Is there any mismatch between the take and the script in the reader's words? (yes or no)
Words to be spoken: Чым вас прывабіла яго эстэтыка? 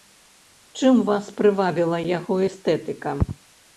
no